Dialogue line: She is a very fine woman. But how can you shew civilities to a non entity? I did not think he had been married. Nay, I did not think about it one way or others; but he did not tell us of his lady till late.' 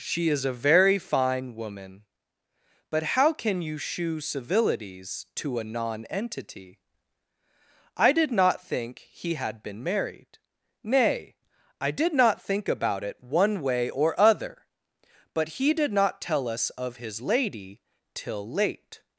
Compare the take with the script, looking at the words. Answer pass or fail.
fail